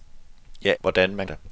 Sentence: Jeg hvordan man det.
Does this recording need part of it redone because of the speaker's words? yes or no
no